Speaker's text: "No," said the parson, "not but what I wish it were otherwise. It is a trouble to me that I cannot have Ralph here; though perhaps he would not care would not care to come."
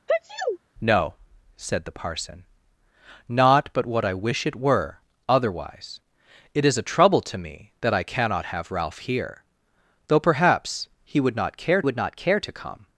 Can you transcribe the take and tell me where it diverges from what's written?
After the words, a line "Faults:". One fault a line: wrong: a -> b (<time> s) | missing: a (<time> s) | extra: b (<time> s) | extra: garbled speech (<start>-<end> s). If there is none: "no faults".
"No," said the parson, "not but what I wish it were otherwise. It is a trouble to me that I cannot have Ralph here; though perhaps he would not care would not care to come."
Faults:
no faults